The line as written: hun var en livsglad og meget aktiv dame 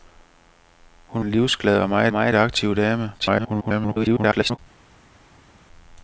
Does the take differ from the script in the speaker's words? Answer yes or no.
yes